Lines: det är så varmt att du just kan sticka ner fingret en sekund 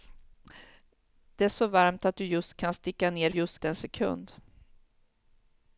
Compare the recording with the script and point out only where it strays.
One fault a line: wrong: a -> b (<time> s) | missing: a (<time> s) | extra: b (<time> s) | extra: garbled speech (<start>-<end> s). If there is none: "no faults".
wrong: fingret -> just (3.3 s)